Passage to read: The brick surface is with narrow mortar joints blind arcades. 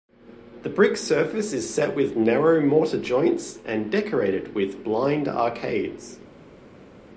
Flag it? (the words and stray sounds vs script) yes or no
yes